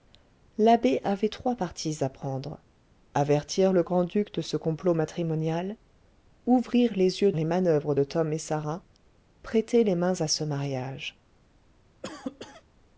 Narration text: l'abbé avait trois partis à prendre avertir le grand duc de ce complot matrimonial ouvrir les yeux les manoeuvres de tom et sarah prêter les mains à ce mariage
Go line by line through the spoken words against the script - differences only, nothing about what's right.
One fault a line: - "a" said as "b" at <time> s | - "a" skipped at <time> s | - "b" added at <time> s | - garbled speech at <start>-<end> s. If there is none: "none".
none